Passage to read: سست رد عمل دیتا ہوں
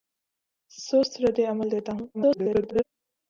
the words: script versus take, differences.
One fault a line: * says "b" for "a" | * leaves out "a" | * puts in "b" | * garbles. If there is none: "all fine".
* garbles